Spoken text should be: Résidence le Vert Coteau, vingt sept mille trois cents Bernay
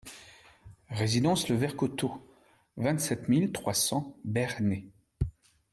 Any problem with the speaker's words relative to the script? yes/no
no